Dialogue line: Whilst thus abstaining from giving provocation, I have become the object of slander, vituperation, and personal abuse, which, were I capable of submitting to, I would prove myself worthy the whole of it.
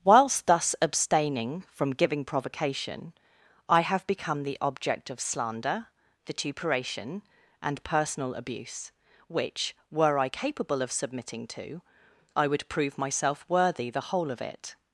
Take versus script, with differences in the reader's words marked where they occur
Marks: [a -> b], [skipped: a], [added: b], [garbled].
Whilst thus abstaining from giving provocation, I have become the object of slander, vituperation, and personal abuse, which, were I capable of submitting to, I would prove myself worthy the whole of it.